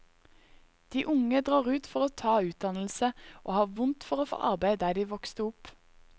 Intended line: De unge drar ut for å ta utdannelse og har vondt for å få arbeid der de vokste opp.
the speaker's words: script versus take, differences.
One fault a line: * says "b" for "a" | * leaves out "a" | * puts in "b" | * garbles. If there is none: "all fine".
all fine